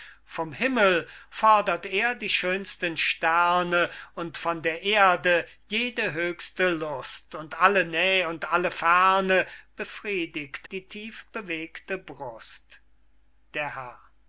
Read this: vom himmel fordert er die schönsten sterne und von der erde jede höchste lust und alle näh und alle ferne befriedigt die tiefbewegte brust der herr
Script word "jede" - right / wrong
right